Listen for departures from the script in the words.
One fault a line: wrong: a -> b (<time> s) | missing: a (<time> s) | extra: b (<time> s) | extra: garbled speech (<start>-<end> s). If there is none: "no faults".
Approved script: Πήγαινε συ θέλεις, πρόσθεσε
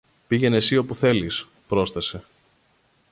extra: όπου (0.8 s)